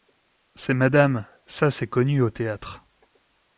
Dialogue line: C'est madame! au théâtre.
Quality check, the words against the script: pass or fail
fail